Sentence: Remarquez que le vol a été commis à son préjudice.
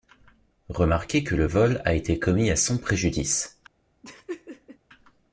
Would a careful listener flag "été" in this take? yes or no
no